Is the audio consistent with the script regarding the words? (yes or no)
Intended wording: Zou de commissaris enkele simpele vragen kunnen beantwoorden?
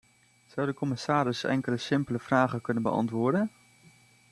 yes